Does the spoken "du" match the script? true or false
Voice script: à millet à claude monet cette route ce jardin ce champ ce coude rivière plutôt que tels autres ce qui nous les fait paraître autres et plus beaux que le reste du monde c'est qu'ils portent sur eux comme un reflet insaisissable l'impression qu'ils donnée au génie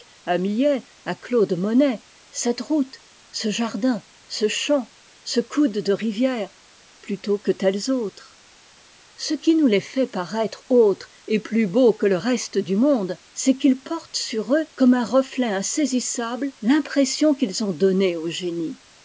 true